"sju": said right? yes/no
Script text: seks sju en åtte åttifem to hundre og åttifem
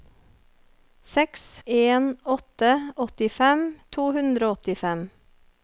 no